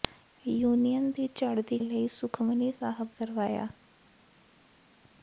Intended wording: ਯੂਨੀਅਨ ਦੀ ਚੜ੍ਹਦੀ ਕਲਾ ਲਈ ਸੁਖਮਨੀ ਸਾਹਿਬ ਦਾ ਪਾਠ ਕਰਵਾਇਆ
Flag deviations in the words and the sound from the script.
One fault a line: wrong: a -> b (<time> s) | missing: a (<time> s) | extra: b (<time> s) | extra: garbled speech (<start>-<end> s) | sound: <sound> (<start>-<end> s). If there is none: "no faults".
missing: ਕਲਾ (1.8 s)
missing: ਦਾ ਪਾਠ (3.1 s)